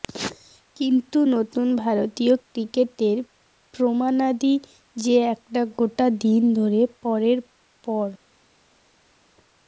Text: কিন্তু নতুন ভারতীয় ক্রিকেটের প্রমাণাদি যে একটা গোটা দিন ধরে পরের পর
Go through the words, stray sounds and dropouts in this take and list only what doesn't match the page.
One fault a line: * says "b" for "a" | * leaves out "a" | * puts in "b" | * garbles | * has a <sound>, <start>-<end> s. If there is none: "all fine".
all fine